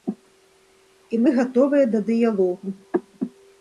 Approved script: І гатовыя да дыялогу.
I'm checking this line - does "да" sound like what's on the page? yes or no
yes